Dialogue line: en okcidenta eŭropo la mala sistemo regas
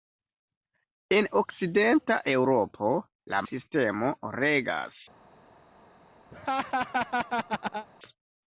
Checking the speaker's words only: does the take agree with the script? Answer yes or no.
no